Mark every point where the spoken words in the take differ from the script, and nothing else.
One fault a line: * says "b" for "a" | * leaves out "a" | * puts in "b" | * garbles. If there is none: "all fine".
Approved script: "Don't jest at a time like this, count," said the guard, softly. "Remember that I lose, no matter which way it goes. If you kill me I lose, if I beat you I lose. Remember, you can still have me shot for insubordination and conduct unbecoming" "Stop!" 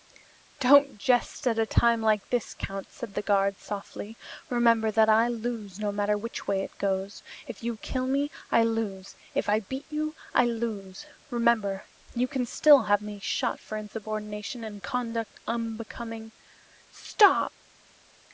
all fine